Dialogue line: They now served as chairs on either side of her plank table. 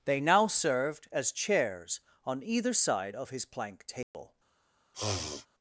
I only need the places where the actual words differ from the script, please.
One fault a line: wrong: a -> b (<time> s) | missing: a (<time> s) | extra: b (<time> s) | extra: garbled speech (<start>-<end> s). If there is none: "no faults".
wrong: her -> his (3.3 s)